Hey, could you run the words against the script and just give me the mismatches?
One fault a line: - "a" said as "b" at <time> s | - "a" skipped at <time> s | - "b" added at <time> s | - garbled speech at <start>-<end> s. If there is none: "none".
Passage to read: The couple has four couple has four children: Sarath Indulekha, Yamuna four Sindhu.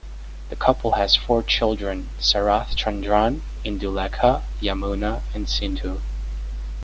- "couple has four" skipped at 1.4 s
- "Chandran" added at 2.7 s
- "four" said as "and" at 5.3 s